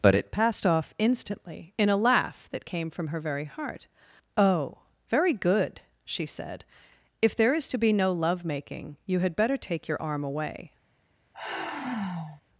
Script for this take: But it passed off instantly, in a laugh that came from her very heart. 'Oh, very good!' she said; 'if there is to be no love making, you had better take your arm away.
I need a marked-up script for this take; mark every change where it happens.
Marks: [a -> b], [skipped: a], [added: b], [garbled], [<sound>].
But it passed off instantly, in a laugh that came from her very heart. 'Oh, very good!' she said; 'if there is to be no love making, you had better take your arm away. [sigh]